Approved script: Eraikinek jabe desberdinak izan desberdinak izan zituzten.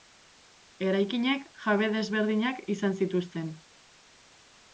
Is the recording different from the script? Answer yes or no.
yes